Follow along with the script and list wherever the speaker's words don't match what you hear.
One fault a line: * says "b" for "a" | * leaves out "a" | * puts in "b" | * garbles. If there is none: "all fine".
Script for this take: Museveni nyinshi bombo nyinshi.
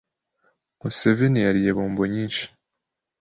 * says "yariye" for "nyinshi"